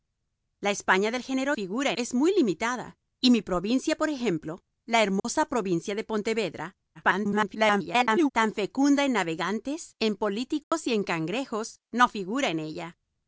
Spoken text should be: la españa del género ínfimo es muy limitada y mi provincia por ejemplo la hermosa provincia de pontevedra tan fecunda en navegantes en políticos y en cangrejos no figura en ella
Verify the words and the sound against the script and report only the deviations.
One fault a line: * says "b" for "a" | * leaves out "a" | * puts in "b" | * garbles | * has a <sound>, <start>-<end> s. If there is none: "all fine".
* says "figura" for "ínfimo"
* has a dropout, 5.2-5.2 s
* garbles
* has a dropout, 10.6-10.7 s